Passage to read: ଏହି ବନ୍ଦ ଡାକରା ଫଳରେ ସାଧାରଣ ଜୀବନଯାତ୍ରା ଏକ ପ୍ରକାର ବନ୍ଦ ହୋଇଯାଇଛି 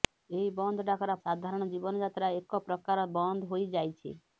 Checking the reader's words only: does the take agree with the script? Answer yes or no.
no